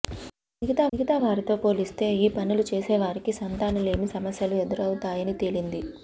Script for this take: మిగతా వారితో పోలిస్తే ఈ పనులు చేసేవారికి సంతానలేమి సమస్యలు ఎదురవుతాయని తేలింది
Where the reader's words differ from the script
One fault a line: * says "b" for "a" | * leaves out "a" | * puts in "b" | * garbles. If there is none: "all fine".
* puts in "మిగతా"